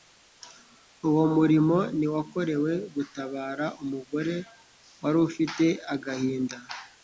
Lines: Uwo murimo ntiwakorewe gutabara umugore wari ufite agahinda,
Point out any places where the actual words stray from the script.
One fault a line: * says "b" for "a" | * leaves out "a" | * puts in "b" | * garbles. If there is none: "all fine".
all fine